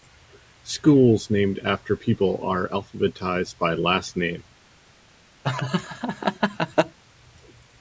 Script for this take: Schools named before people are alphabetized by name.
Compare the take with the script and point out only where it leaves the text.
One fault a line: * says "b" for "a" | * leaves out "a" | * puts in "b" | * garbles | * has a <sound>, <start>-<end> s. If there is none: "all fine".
* says "after" for "before"
* puts in "last"
* has a laugh, 5.4-7.0 s